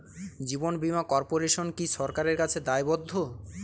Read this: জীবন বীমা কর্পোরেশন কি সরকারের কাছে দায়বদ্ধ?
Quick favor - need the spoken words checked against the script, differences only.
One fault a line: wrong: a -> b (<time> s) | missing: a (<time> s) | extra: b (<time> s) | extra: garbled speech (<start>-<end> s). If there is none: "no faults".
no faults